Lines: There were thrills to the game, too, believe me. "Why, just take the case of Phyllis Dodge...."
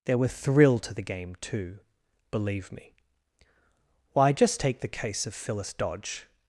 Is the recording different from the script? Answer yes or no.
yes